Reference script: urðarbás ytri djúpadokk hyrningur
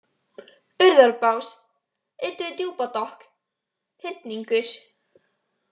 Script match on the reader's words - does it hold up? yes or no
yes